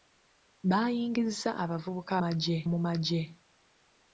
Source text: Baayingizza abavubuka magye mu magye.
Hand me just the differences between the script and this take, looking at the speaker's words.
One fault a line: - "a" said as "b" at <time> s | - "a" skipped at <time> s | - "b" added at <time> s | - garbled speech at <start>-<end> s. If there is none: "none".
none